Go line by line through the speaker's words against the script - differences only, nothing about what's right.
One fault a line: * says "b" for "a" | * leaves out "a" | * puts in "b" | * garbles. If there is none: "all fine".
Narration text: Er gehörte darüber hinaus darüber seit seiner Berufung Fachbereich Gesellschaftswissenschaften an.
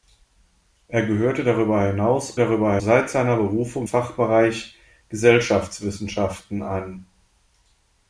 all fine